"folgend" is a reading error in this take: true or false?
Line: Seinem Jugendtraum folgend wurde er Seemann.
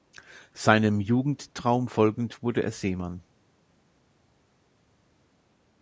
false